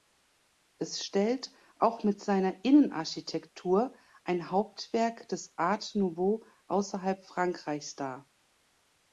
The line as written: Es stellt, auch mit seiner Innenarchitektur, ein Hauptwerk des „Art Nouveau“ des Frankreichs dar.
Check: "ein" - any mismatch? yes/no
no